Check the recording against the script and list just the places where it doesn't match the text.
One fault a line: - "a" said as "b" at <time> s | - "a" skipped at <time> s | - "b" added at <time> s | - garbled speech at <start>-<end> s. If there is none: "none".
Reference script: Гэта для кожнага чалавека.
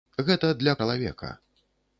- "кожнага" skipped at 0.7 s